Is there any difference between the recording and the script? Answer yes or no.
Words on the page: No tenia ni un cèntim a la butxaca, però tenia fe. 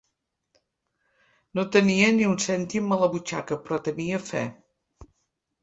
no